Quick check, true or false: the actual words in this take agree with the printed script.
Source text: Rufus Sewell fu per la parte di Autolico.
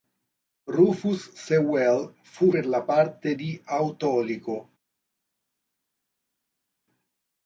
true